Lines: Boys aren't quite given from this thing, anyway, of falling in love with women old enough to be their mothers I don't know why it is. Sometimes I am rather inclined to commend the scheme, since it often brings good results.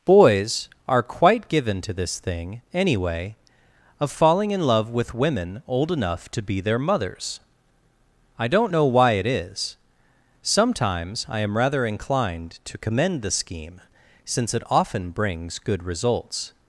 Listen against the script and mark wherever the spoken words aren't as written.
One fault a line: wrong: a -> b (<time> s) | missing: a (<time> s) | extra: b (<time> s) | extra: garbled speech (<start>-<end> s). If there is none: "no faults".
wrong: aren't -> are (0.9 s)
wrong: from -> to (1.8 s)